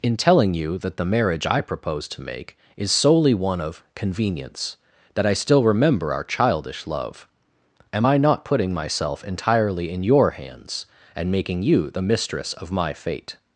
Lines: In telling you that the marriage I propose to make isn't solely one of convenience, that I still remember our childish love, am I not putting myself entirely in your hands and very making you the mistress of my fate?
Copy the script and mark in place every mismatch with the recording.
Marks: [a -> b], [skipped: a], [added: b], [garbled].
In telling you that the marriage I propose to make [isn't -> is] solely one of convenience, that I still remember our childish love, am I not putting myself entirely in your hands and [skipped: very] making you the mistress of my fate?